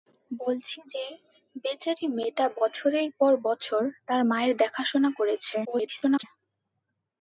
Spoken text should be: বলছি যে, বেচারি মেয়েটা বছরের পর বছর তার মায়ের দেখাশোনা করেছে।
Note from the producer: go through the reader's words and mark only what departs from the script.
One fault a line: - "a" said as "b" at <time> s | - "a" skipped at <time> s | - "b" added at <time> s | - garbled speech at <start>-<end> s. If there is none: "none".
- garbled speech at 5.6-6.2 s